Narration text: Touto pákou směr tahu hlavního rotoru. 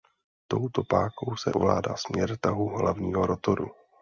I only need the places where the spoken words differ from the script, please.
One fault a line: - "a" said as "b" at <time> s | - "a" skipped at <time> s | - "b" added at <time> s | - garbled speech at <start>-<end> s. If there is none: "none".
- "se ovládá" added at 1.4 s